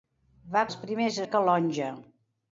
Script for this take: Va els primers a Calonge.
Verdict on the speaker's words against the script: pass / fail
pass